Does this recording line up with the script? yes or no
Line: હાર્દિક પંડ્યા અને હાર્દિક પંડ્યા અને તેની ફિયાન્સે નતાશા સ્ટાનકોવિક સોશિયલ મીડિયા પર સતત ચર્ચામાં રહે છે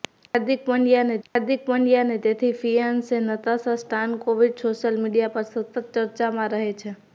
yes